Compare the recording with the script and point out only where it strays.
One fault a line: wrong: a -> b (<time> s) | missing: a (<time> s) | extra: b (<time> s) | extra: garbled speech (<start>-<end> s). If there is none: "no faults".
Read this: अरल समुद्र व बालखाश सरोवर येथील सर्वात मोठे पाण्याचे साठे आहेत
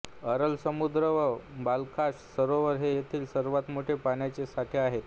extra: हे (2.8 s)